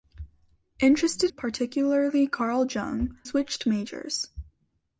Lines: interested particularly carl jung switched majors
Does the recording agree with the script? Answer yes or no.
yes